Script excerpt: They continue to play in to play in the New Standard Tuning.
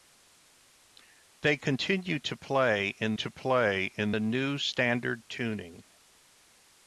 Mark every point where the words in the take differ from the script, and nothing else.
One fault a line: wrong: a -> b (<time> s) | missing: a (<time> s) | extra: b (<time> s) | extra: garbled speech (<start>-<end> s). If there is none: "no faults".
no faults